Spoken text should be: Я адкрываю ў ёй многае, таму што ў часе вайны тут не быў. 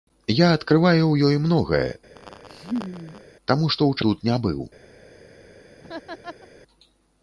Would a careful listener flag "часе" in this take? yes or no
yes